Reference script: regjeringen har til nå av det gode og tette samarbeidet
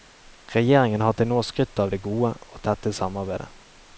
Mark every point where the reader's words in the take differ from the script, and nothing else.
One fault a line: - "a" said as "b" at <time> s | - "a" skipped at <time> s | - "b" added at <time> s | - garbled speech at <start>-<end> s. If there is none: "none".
- "skrytt" added at 1.4 s